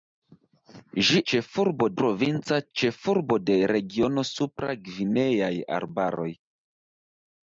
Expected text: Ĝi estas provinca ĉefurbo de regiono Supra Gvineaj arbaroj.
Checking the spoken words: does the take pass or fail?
fail